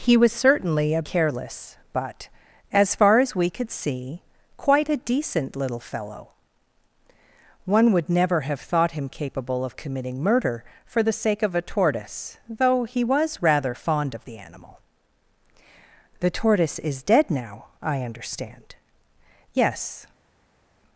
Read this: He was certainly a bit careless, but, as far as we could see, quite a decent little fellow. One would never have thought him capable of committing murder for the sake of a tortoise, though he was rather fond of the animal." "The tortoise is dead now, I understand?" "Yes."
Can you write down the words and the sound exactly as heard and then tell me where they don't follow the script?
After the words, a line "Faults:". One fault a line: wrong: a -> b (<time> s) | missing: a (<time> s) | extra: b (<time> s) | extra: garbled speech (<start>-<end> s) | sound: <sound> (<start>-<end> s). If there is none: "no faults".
He was certainly a careless, but, as far as we could see, quite a decent little fellow. One would never have thought him capable of committing murder for the sake of a tortoise, though he was rather fond of the animal." "The tortoise is dead now, I understand?" "Yes."
Faults:
missing: bit (1.0 s)